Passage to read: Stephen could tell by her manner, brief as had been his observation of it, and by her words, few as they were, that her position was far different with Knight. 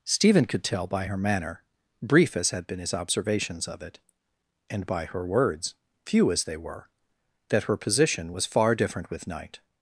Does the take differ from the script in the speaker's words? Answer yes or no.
yes